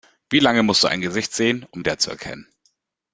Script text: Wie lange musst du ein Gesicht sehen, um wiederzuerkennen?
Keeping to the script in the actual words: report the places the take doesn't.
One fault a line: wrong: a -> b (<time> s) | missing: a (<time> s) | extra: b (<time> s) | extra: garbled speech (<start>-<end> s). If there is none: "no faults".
no faults